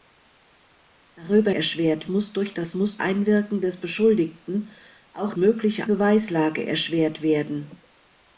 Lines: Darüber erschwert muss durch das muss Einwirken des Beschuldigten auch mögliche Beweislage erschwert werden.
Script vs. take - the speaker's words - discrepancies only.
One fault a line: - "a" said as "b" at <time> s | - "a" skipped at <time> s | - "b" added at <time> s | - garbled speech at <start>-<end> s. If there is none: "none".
none